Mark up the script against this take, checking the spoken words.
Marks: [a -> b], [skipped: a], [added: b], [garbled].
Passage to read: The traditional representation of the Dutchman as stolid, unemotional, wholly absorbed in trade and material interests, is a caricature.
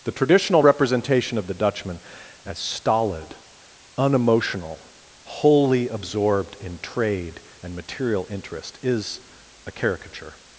The traditional representation of the Dutchman as stolid, unemotional, wholly absorbed in trade and material [interests, -> interest] is a caricature.